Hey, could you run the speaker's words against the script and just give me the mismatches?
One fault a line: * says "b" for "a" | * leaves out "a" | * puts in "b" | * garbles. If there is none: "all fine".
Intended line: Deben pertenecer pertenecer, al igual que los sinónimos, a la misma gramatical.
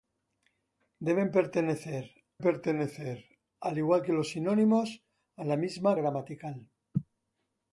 all fine